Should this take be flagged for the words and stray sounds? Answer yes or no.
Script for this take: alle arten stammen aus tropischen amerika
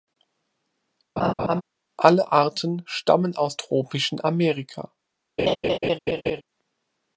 yes